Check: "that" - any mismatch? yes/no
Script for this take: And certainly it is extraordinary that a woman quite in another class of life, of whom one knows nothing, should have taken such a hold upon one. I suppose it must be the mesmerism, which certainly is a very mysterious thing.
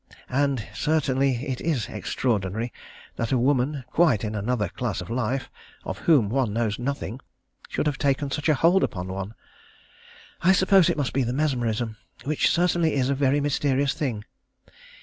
no